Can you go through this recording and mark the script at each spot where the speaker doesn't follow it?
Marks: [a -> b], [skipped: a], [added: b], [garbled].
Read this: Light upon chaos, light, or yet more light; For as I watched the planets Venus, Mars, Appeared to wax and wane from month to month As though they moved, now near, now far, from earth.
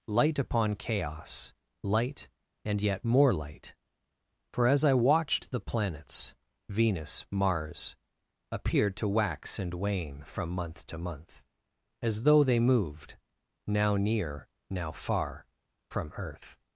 Light upon chaos, light, [or -> and] yet more light; For as I watched the planets Venus, Mars, Appeared to wax and wane from month to month As though they moved, now near, now far, from earth.